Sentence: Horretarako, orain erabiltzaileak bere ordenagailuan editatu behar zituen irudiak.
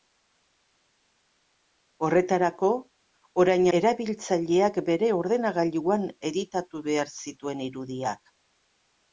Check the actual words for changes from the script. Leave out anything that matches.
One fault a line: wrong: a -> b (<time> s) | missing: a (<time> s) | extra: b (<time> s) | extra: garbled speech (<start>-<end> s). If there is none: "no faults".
no faults